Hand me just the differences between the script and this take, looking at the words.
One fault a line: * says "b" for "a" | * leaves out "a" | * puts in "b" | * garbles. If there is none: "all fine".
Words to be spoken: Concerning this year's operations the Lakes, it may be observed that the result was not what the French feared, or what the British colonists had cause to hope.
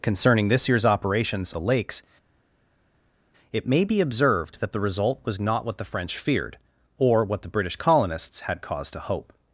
all fine